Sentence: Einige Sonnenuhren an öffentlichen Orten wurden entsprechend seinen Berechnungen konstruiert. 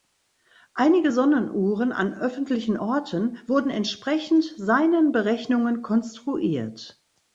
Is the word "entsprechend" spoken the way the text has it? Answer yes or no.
yes